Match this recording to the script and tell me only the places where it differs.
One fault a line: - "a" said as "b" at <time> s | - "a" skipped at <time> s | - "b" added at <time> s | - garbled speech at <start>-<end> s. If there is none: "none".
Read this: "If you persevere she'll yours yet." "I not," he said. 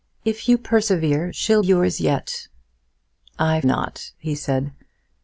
none